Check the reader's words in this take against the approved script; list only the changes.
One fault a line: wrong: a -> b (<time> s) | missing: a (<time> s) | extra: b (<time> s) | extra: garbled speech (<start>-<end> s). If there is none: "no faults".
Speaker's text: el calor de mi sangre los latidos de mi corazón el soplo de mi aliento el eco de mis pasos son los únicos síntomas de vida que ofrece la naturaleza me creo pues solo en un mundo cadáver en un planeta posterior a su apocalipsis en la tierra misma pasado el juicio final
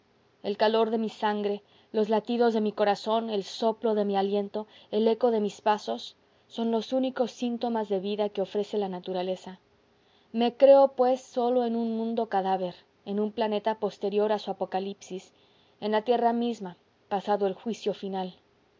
no faults